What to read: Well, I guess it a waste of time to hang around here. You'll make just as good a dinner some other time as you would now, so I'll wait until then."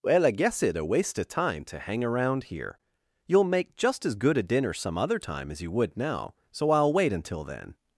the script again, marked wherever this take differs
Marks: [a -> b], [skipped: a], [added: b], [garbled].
Well, I guess it a waste of time to hang around here. You'll make just as good a dinner some other time as you would now, so I'll wait until then."